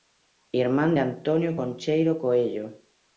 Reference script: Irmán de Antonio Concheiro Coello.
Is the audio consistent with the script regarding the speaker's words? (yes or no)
yes